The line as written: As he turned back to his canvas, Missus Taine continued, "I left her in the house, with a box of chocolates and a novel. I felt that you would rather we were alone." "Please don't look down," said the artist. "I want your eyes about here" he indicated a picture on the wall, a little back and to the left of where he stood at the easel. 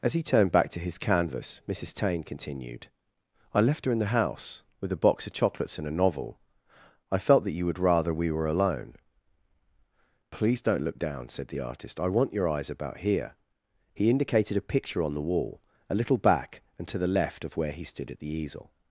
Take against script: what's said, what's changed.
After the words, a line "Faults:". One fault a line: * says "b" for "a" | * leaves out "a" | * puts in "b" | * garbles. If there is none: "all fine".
As he turned back to his canvas, Missus Taine continued, "I left her in the house, with a box of chocolates and a novel. I felt that you would rather we were alone." "Please don't look down," said the artist. "I want your eyes about here" he indicated a picture on the wall, a little back and to the left of where he stood at the easel.
Faults:
all fine